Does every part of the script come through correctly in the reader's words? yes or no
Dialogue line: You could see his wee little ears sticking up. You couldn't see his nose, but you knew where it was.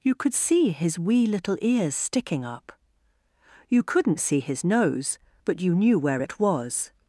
yes